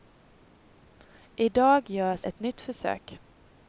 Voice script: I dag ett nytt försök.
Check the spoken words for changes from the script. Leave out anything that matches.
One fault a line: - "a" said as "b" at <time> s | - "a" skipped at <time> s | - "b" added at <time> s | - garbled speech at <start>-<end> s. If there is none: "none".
- "görs" added at 1.9 s